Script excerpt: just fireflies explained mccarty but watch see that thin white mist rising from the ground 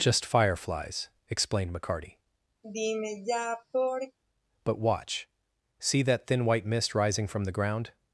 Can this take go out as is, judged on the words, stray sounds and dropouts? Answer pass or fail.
fail